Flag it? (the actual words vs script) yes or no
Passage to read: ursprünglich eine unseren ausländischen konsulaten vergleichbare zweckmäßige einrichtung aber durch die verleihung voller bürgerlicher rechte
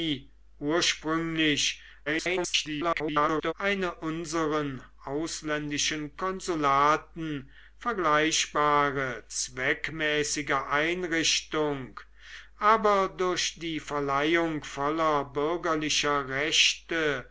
yes